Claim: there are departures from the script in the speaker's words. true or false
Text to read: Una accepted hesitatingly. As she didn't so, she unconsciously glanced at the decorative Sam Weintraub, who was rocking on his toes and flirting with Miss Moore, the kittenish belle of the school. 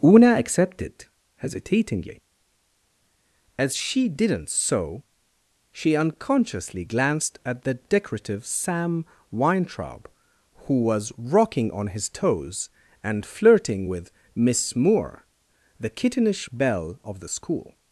false